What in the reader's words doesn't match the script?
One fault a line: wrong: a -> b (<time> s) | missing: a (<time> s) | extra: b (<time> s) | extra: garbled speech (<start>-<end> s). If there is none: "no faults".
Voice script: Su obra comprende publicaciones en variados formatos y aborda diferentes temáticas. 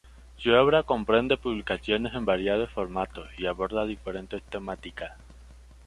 no faults